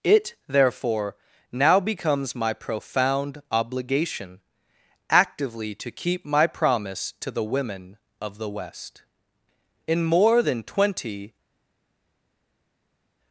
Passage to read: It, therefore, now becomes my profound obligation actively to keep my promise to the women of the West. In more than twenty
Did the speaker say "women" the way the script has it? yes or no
yes